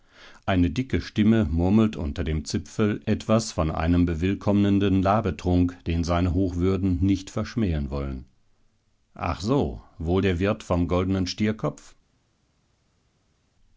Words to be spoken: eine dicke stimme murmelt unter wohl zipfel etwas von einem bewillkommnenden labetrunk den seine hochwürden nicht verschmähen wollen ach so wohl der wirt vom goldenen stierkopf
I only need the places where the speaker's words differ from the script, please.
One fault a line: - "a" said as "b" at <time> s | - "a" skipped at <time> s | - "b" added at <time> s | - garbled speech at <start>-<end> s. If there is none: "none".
- "wohl" said as "dem" at 2.2 s